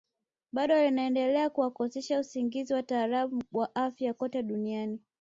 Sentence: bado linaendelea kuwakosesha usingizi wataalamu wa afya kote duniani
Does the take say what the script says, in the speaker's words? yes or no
yes